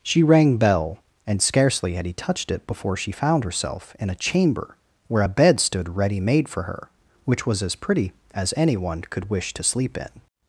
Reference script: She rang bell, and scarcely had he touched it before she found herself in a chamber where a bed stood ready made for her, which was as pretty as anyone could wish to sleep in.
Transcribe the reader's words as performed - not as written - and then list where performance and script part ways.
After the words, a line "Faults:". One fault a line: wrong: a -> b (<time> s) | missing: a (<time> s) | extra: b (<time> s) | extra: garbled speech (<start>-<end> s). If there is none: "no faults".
She rang bell, and scarcely had he touched it before she found herself in a chamber where a bed stood ready made for her, which was as pretty as anyone could wish to sleep in.
Faults:
no faults